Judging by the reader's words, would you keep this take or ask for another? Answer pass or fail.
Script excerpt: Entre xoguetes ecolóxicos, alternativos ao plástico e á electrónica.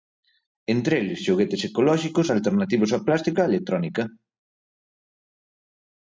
fail